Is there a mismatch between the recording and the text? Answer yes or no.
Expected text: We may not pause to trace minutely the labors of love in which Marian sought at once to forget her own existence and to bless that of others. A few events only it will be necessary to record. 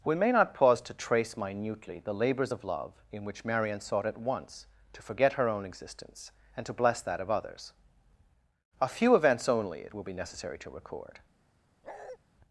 no